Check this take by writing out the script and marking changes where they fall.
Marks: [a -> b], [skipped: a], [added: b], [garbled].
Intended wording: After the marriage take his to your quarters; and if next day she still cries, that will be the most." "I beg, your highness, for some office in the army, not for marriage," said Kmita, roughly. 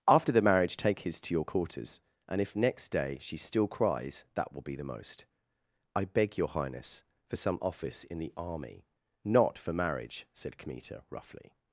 After the marriage take his to your quarters; and if next day she still cries, that will be the most." "I beg, your highness, for some office in the army, not for marriage," said Kmita, roughly.